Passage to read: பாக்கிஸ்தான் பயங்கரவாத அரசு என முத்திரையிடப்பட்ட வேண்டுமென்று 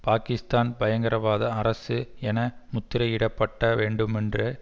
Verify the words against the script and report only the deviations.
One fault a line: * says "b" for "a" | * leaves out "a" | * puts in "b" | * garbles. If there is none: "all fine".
all fine